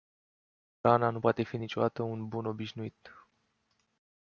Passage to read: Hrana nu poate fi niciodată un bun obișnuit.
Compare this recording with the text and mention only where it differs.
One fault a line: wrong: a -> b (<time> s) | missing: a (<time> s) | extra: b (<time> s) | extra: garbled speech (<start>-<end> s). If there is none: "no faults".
no faults